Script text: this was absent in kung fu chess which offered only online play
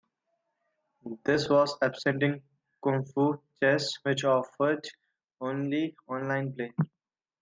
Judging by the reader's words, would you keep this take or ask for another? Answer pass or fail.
pass